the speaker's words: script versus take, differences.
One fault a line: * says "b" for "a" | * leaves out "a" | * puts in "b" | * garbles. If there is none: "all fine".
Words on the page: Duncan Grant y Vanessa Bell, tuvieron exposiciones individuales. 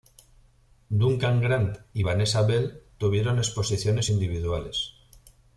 all fine